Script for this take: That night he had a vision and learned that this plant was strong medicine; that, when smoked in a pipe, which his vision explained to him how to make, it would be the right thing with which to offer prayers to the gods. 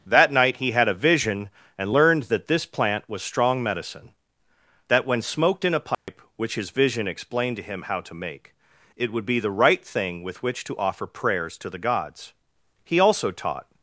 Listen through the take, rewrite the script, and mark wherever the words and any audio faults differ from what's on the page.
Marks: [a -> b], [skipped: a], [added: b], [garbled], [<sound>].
That night he had a vision and learned that this plant was strong medicine; that, when smoked in a pipe, [dropout] which his vision explained to him how to make, it would be the right thing with which to offer prayers to the gods. [added: He also taught]